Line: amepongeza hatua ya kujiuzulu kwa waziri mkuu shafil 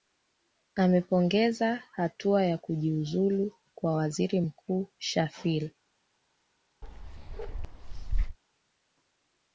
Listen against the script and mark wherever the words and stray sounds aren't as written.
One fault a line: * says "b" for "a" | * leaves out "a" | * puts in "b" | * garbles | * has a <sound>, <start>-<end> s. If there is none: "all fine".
* has a bark, 6.8-8.4 s